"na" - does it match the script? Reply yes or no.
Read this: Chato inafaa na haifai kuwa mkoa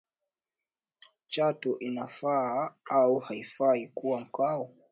no